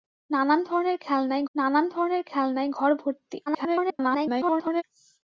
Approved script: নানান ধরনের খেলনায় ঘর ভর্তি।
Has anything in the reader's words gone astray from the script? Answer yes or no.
yes